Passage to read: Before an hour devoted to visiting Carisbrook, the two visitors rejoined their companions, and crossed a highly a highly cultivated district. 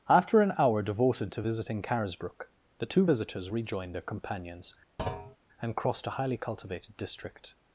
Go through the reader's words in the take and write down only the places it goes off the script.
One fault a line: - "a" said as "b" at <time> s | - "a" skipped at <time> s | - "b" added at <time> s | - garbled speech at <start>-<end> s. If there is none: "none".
- "Before" said as "After" at 0.1 s
- "a highly" skipped at 6.4 s